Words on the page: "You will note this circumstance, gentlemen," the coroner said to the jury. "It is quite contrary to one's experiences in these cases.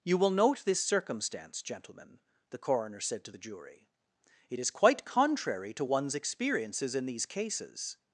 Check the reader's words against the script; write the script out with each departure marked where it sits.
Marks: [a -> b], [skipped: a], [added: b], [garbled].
"You will note this circumstance, gentlemen," the coroner said to the jury. "It is quite contrary to one's experiences in these cases.